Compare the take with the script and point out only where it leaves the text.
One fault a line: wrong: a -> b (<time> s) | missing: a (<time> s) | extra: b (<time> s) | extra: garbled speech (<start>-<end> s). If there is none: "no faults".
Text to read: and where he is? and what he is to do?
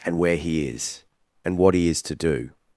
no faults